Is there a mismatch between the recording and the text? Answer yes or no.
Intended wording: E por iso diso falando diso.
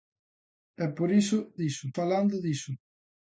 no